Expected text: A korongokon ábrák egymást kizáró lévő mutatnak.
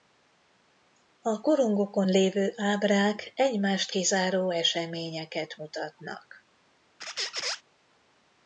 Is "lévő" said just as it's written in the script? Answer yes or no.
no